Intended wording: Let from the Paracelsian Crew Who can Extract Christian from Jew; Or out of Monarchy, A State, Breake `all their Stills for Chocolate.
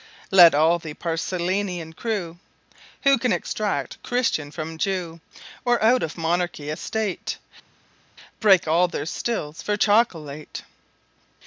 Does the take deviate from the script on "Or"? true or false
false